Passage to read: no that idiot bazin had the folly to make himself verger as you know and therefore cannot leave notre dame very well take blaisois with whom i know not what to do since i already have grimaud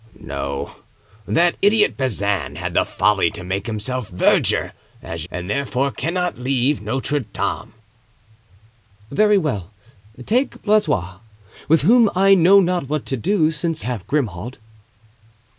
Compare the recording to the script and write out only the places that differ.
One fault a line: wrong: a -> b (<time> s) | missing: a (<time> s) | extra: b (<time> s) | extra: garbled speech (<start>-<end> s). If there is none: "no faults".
missing: you know (5.3 s)
missing: i already (13.8 s)